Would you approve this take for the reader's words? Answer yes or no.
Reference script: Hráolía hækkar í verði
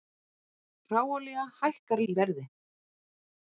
yes